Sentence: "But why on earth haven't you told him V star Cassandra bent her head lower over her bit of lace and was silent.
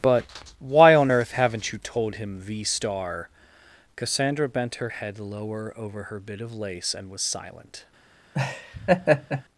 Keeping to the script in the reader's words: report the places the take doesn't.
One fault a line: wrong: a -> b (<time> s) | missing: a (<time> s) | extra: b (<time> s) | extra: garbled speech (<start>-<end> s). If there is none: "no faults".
no faults